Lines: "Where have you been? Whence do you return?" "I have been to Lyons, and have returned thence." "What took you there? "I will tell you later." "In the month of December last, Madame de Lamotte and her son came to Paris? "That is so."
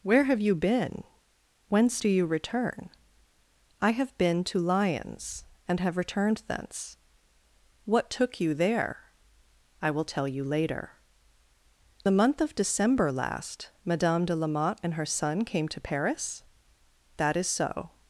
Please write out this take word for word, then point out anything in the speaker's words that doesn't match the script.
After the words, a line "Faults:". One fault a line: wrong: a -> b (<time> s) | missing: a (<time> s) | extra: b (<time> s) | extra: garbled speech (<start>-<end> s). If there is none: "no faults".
"Where have you been? Whence do you return?" "I have been to Lyons, and have returned thence." "What took you there? "I will tell you later." "The month of December last, Madame de Lamotte and her son came to Paris? "That is so."
Faults:
missing: In (11.0 s)